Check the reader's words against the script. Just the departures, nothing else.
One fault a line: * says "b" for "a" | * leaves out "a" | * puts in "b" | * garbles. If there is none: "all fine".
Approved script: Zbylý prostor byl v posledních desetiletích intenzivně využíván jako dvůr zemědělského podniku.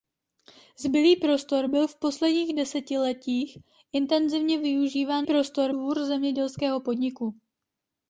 * says "prostor" for "jako"